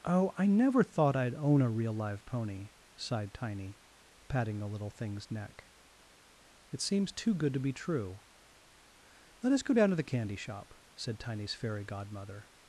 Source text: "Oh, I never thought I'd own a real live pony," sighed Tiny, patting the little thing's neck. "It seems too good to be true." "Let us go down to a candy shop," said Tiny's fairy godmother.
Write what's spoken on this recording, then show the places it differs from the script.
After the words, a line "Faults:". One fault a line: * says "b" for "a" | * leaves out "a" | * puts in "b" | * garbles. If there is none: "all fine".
"Oh, I never thought I'd own a real live pony," sighed Tiny, patting the little thing's neck. "It seems too good to be true." "Let us go down to the candy shop," said Tiny's fairy godmother.
Faults:
* says "the" for "a"